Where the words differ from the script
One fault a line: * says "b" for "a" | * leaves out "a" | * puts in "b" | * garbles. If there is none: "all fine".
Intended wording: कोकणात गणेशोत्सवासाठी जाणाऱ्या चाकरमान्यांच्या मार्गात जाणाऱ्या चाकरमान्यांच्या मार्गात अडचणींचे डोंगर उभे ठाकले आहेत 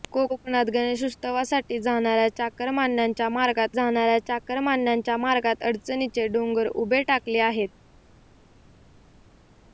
all fine